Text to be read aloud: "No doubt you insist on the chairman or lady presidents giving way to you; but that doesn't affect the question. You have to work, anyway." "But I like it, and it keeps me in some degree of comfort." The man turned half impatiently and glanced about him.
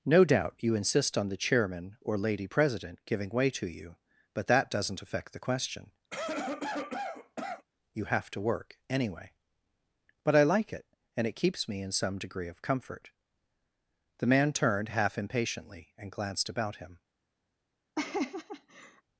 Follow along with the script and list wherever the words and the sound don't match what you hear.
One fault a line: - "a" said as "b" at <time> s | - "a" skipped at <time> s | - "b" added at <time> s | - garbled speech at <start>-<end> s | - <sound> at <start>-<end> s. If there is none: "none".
- "presidents" said as "president" at 2.5 s
- cough at 6.1-7.7 s
- laugh at 18.0-19.0 s